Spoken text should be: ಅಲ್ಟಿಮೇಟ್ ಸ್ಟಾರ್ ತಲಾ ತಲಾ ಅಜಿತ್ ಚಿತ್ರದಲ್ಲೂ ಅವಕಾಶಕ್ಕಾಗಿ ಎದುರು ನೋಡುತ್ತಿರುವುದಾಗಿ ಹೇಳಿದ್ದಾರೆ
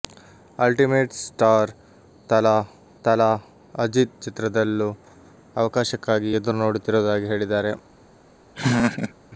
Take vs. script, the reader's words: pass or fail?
pass